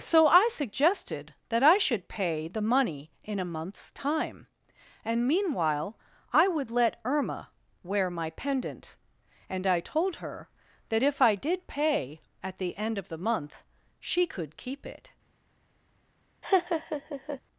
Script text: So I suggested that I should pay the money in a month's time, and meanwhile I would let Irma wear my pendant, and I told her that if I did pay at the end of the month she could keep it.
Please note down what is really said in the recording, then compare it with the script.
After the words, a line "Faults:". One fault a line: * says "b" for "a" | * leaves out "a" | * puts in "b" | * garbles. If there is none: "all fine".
So I suggested that I should pay the money in a month's time, and meanwhile I would let Irma wear my pendant, and I told her that if I did pay at the end of the month she could keep it.
Faults:
all fine